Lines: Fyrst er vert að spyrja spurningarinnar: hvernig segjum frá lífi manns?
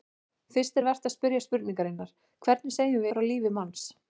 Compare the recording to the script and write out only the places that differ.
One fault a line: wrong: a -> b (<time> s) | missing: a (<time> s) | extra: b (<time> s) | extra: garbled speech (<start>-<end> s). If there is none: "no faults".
no faults